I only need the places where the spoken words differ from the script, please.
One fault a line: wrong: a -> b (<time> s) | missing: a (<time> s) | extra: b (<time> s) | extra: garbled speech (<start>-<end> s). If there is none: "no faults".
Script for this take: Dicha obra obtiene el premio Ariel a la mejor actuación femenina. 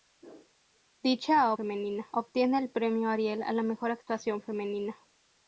wrong: obra -> femenina (1.5 s)